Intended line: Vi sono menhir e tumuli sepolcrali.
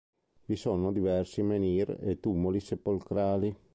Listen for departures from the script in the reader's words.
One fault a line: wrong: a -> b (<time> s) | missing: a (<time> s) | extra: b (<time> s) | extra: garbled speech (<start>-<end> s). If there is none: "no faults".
extra: diversi (0.9 s)